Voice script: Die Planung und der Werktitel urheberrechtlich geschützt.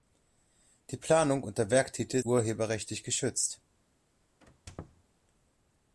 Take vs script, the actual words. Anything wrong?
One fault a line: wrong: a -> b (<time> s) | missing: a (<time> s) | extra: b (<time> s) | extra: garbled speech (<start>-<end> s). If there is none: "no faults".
no faults